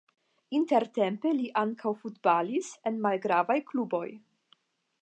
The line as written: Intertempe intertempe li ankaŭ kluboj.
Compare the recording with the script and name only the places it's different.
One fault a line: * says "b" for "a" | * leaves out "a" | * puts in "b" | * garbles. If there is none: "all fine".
* leaves out "intertempe"
* puts in "futbalis en malgravaj"